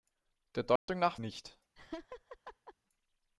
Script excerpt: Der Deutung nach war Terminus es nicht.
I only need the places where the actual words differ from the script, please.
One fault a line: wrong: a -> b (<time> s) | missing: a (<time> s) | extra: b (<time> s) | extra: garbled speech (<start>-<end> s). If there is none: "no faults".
missing: war Terminus es (1.2 s)